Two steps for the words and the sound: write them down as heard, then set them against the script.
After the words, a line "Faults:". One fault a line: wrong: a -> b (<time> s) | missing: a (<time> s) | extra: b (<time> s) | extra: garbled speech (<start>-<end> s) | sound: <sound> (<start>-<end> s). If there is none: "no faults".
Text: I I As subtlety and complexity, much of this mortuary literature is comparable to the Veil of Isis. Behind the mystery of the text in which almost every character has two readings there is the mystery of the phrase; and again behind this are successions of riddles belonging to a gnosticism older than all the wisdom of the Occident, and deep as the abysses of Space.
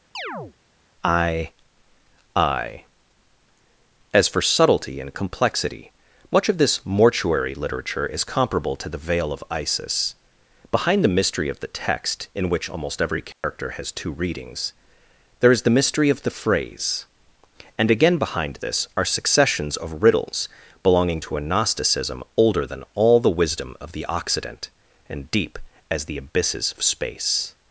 I I As for subtlety and complexity, much of this mortuary literature is comparable to the Veil of Isis. Behind the mystery of the text in which almost every character has two readings there is the mystery of the phrase; and again behind this are successions of riddles belonging to a gnosticism older than all the wisdom of the Occident, and deep as the abysses of Space.
Faults:
sound: chirp (0.1-0.5 s)
extra: for (4.3 s)
sound: dropout (13.3-13.4 s)